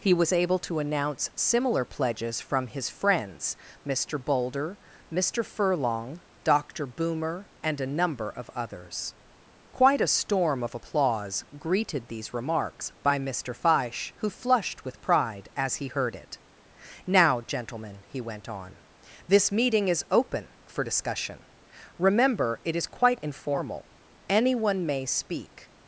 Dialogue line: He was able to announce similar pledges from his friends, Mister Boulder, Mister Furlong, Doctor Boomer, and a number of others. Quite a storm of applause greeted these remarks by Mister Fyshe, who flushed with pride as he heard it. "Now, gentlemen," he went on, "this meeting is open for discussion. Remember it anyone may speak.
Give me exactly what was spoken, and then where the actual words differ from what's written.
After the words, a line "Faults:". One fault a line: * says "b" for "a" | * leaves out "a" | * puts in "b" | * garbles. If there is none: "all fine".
He was able to announce similar pledges from his friends, Mister Boulder, Mister Furlong, Doctor Boomer, and a number of others. Quite a storm of applause greeted these remarks by Mister Fyshe, who flushed with pride as he heard it. "Now, gentlemen," he went on, "this meeting is open for discussion. Remember it is quite informal, anyone may speak.
Faults:
* puts in "is quite informal"